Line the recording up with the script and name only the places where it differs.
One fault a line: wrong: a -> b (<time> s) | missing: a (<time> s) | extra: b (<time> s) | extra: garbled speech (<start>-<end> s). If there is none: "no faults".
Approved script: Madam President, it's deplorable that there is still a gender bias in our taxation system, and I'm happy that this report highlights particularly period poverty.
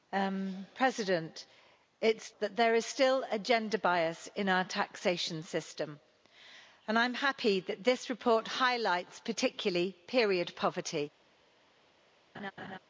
missing: deplorable (2.3 s)